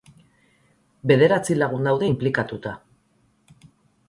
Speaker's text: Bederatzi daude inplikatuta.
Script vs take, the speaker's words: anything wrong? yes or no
yes